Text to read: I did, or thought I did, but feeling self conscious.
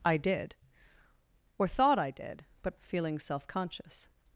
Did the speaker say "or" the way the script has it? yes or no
yes